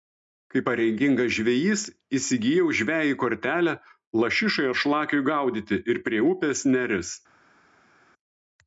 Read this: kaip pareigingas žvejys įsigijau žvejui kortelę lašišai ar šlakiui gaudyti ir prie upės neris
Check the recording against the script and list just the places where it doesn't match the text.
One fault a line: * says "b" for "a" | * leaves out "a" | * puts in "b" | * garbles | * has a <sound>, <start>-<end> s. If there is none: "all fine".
all fine